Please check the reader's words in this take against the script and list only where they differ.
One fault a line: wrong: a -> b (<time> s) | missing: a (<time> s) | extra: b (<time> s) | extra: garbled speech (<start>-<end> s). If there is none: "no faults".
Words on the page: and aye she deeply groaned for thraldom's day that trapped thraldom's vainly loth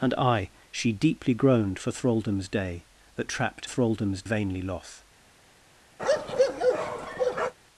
no faults